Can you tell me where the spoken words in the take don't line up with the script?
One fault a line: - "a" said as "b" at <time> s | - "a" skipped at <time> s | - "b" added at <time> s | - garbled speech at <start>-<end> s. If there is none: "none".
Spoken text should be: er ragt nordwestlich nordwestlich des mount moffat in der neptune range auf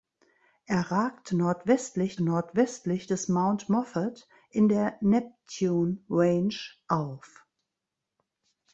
none